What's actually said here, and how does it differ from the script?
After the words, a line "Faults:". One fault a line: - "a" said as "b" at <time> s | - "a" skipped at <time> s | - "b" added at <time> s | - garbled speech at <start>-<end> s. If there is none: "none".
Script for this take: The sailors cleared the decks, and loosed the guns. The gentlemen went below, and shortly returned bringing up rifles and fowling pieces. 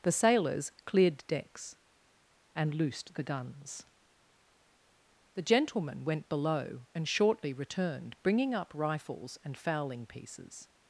The sailors cleared decks, and loosed the guns. The gentlemen went below, and shortly returned bringing up rifles and fowling pieces.
Faults:
- "the" skipped at 1.2 s